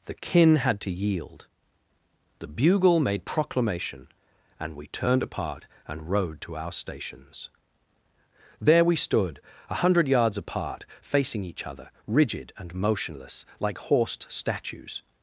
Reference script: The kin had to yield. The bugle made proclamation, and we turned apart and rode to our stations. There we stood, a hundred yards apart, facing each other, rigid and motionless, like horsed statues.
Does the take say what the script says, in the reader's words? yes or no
yes